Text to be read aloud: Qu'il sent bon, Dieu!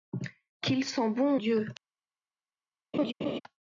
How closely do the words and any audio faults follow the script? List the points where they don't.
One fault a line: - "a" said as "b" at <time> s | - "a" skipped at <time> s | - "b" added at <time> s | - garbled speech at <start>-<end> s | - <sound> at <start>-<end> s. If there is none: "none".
- laugh at 2.9-3.4 s